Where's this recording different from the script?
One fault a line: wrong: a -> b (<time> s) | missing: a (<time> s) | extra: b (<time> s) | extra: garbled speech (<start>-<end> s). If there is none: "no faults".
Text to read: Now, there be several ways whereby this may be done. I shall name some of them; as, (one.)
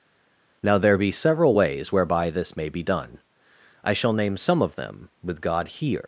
wrong: as one -> with god here (5.2 s)